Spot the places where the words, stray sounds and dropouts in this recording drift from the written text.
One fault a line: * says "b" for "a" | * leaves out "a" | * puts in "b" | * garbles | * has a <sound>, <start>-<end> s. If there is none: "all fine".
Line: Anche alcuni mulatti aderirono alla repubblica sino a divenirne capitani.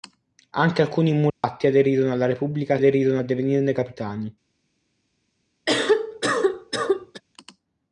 * has a dropout, 1.3-1.4 s
* says "aderirono" for "sino"
* has a cough, 5.7-7.2 s